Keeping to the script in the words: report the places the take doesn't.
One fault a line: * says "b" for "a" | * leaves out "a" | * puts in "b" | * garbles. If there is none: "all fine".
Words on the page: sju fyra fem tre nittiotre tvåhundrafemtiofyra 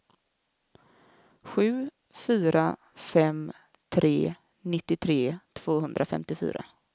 all fine